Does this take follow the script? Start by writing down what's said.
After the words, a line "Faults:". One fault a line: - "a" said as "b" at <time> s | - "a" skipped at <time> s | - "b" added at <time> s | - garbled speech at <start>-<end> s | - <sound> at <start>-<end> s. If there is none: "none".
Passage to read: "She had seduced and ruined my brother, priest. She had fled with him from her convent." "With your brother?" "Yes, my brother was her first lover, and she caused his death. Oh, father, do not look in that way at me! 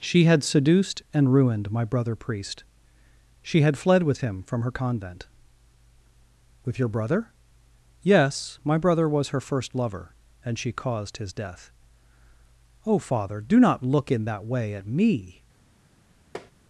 "She had seduced and ruined my brother, priest. She had fled with him from her convent." "With your brother?" "Yes, my brother was her first lover, and she caused his death. Oh, father, do not look in that way at me!
Faults:
- tap at 16.3-16.5 s